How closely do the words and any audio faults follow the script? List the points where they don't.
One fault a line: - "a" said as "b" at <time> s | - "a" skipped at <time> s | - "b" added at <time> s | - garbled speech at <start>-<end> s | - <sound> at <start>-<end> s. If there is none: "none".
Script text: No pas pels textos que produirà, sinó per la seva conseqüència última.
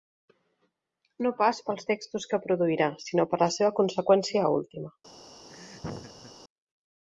- laugh at 5.5-6.3 s